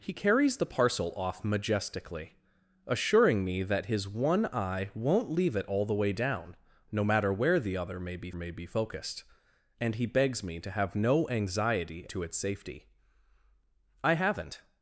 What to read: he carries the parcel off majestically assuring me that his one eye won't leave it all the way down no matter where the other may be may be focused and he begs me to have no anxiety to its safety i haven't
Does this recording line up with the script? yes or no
yes